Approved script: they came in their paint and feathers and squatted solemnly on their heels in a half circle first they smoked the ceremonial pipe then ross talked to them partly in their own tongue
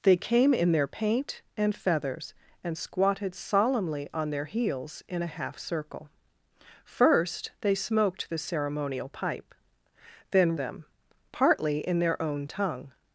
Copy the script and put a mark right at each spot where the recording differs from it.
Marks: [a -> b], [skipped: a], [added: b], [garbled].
they came in their paint and feathers and squatted solemnly on their heels in a half circle first they smoked the ceremonial pipe then [skipped: ross talked to] them partly in their own tongue